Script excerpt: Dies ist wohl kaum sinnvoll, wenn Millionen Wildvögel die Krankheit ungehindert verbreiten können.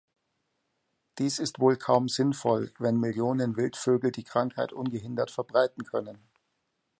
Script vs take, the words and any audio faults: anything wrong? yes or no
no